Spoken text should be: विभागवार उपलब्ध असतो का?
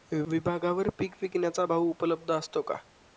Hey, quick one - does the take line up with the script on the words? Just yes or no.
no